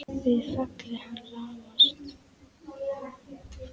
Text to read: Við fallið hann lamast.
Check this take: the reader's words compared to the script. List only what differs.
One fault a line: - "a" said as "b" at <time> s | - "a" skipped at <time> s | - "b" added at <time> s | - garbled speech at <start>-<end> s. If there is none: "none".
none